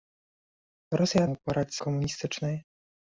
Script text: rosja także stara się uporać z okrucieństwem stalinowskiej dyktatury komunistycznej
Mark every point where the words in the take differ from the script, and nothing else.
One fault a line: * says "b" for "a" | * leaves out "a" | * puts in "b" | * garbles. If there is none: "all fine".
* leaves out "także stara się"
* leaves out "okrucieństwem stalinowskiej dyktatury"